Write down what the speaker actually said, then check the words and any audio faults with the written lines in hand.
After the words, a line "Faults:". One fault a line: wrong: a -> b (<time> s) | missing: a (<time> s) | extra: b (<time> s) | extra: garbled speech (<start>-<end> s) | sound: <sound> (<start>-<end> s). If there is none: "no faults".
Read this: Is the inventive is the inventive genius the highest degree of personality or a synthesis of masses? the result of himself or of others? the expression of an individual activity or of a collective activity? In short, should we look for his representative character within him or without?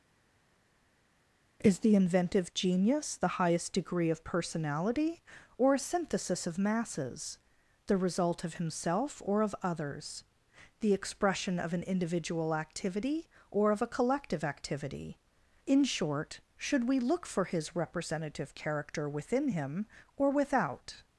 Is the inventive genius the highest degree of personality or a synthesis of masses? the result of himself or of others? the expression of an individual activity or of a collective activity? In short, should we look for his representative character within him or without?
Faults:
missing: is the inventive (2.5 s)